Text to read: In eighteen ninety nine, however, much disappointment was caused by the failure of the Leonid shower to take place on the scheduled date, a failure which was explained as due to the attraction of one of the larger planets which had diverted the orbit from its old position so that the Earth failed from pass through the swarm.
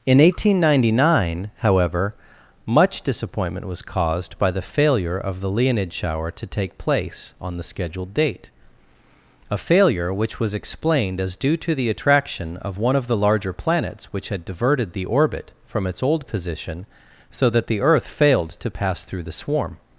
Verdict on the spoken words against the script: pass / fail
fail